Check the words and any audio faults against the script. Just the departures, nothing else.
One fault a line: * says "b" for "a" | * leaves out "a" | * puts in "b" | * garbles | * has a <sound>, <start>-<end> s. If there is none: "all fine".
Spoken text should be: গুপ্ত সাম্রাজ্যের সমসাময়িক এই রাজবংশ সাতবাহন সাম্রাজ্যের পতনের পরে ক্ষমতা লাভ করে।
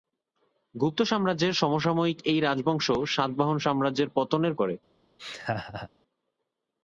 * leaves out "পরে ক্ষমতা লাভ"
* has a laugh, 5.2-5.9 s